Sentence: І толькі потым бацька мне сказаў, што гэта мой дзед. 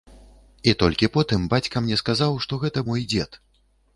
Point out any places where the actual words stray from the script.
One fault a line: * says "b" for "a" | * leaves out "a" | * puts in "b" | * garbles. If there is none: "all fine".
all fine